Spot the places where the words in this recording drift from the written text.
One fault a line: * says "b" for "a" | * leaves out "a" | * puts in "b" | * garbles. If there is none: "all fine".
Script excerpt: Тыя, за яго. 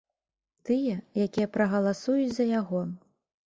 * puts in "якія прагаласуюць"